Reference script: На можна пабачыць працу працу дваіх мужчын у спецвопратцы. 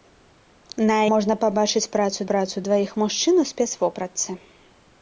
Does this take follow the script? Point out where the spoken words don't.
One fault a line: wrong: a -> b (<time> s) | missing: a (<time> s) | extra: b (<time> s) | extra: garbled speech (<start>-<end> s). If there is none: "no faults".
no faults